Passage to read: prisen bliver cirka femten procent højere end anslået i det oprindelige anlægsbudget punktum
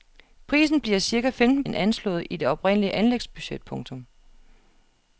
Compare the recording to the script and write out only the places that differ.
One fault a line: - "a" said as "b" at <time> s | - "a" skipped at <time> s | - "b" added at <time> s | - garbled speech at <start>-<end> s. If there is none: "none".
- "procent højere" skipped at 1.6 s